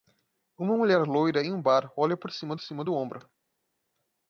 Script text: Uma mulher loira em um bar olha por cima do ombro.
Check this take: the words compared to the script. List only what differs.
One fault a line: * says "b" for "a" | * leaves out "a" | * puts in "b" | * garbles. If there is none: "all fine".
* puts in "cima"